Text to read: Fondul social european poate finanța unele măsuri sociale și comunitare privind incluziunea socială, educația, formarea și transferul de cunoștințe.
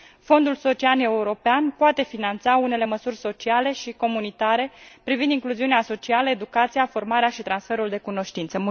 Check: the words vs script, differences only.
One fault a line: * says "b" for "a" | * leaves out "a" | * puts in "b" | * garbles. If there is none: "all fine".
all fine